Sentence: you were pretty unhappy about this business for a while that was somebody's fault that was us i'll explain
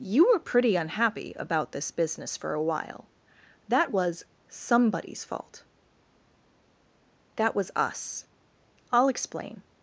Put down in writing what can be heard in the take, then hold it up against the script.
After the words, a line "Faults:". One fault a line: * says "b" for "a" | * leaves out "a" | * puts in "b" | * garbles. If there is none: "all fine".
you were pretty unhappy about this business for a while that was somebody's fault that was us i'll explain
Faults:
all fine